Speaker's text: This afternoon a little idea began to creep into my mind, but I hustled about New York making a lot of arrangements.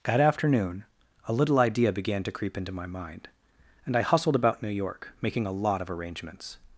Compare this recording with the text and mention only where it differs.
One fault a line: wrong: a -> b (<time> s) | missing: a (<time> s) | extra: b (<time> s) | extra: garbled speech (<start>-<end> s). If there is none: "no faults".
wrong: This -> That (0.1 s)
wrong: but -> and (3.8 s)